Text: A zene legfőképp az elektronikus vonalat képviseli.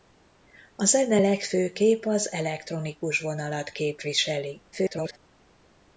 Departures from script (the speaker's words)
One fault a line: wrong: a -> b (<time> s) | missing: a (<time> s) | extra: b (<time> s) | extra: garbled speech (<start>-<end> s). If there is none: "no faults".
extra: garbled speech (4.7-5.2 s)